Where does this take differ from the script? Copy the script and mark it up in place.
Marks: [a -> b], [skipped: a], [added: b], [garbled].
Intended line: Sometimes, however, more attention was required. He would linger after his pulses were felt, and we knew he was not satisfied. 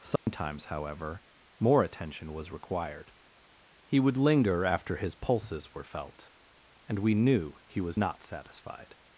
Sometimes, however, more attention was required. He would linger after his pulses were felt, and we knew he was not satisfied.